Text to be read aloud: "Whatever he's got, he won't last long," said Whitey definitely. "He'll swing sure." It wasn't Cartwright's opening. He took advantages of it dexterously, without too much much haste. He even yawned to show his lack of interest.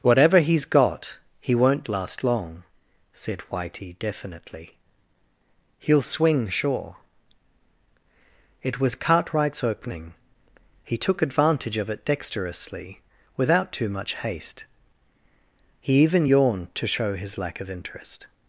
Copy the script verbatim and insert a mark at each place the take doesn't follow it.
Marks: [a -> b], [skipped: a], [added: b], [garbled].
"Whatever he's got, he won't last long," said Whitey definitely. "He'll swing sure." It [wasn't -> was] Cartwright's opening. He took [advantages -> advantage] of it dexterously, without too much [skipped: much] haste. He even yawned to show his lack of interest.